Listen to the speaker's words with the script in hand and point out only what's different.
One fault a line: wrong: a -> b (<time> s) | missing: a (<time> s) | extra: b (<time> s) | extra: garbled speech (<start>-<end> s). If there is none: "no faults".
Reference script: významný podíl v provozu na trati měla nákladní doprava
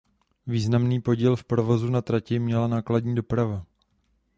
no faults